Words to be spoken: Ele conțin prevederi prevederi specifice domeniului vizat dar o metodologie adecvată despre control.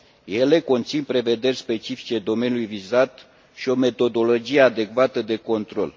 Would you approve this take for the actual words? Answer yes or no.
no